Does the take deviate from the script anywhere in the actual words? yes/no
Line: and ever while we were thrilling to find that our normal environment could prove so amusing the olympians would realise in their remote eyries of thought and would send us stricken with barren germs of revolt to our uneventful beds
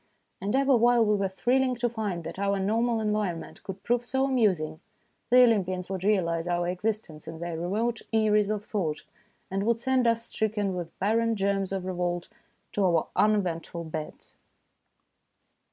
yes